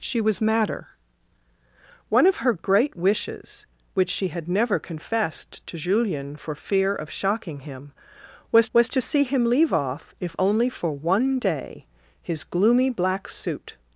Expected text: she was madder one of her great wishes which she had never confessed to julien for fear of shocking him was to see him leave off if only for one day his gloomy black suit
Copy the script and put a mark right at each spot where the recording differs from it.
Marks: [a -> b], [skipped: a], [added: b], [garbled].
she was madder one of her great wishes which she had never confessed to julien for fear of shocking him was [added: was] to see him leave off if only for one day his gloomy black suit